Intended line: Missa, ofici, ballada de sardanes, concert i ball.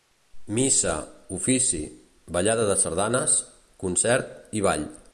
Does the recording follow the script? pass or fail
pass